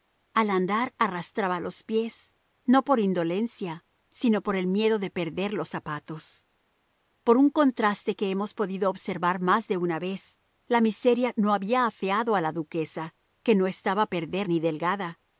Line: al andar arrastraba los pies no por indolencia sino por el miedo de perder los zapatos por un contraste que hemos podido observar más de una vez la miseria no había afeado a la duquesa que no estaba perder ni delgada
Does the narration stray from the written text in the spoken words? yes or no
no